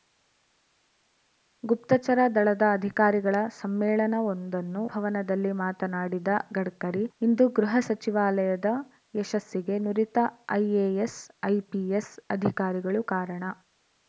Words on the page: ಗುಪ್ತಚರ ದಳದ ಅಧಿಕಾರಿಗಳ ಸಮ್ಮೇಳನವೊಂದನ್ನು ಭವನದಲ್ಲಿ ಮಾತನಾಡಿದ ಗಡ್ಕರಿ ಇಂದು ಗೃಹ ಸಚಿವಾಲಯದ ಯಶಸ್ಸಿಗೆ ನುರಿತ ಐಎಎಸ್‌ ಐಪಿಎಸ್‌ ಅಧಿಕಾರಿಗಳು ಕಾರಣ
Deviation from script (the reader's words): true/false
false